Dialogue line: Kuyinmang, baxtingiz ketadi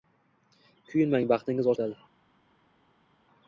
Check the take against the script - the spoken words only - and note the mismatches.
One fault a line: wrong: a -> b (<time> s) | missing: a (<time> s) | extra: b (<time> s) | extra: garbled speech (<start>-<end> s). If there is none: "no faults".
no faults